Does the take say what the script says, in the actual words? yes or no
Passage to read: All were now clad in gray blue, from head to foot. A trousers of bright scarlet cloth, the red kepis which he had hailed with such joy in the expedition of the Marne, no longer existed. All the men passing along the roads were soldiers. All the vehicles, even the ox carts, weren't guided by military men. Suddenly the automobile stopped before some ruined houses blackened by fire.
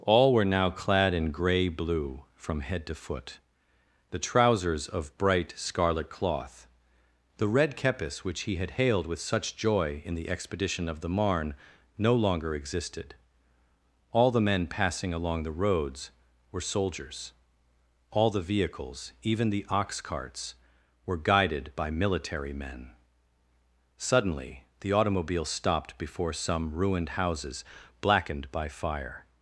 no